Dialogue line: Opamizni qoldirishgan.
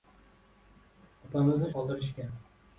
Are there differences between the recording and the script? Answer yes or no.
no